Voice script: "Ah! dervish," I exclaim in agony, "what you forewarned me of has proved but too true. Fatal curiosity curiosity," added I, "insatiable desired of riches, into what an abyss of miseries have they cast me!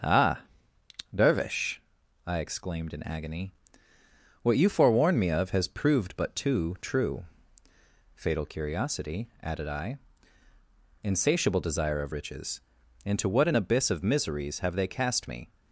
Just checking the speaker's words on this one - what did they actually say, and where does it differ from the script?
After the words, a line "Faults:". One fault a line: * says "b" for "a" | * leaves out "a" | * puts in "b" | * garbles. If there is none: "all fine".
"Ah! dervish," I exclaimed in agony, "what you forewarned me of has proved but too true. Fatal curiosity," added I, "insatiable desire of riches, into what an abyss of miseries have they cast me!
Faults:
* says "exclaimed" for "exclaim"
* leaves out "curiosity"
* says "desire" for "desired"